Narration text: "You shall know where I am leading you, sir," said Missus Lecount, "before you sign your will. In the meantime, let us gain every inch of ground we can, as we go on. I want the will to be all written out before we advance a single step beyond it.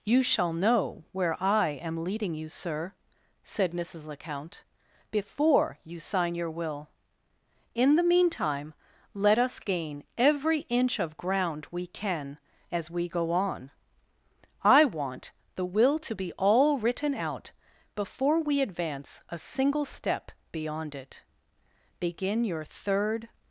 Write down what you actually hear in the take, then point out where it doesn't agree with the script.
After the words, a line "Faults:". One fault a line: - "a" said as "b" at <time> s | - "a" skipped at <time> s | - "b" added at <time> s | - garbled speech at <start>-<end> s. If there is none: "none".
"You shall know where I am leading you, sir," said Missus Lecount, "before you sign your will. In the meantime, let us gain every inch of ground we can, as we go on. I want the will to be all written out before we advance a single step beyond it. Begin your third
Faults:
- "Begin your third" added at 22.0 s